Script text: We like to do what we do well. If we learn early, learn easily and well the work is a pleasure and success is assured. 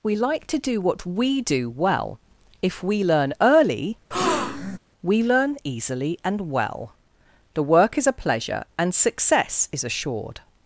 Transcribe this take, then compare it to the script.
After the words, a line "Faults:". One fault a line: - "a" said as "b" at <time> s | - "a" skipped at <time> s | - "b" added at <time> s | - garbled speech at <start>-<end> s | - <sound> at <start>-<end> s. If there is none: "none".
We like to do what we do well. If we learn early, we learn easily and well the work is a pleasure and success is assured.
Faults:
- breath at 4.1-4.8 s
- "we" added at 5.0 s